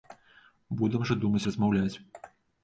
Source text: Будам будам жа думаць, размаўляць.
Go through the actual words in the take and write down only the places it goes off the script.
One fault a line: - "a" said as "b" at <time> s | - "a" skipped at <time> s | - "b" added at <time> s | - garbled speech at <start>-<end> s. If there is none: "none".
- "будам" skipped at 1.1 s